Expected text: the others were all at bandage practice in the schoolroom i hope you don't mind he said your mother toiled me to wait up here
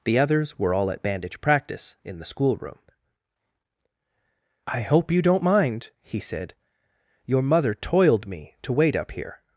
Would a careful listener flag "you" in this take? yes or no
no